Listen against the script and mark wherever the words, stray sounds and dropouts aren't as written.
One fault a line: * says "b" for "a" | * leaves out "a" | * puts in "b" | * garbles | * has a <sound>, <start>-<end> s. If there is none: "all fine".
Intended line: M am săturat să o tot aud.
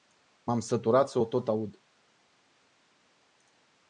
all fine